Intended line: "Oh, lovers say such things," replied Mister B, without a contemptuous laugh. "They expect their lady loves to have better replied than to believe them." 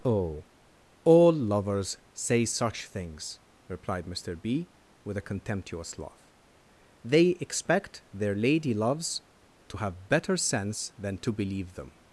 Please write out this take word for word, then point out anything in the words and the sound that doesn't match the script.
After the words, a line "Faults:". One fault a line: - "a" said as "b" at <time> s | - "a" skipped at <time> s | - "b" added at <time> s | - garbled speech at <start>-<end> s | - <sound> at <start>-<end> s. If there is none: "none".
"Oh, all lovers say such things," replied Mister B, with a contemptuous laugh. "They expect their lady loves to have better sense than to believe them."
Faults:
- "all" added at 1.0 s
- "without" said as "with" at 5.0 s
- "replied" said as "sense" at 10.4 s